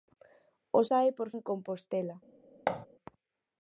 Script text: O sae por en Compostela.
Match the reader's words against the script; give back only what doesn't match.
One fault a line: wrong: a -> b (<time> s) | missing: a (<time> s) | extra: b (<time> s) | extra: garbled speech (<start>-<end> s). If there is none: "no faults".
no faults